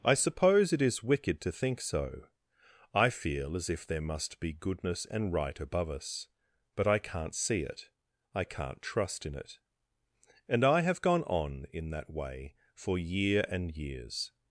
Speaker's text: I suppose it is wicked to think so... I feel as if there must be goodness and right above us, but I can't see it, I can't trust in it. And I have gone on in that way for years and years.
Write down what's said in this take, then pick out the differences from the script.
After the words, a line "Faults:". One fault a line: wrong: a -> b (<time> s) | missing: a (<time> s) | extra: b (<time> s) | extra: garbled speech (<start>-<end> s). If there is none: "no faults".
I suppose it is wicked to think so... I feel as if there must be goodness and right above us, but I can't see it, I can't trust in it. And I have gone on in that way for year and years.
Faults:
wrong: years -> year (13.0 s)